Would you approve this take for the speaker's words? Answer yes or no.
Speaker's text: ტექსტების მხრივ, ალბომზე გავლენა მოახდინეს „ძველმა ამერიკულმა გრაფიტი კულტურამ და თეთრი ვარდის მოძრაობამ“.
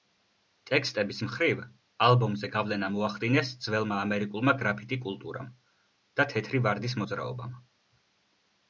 yes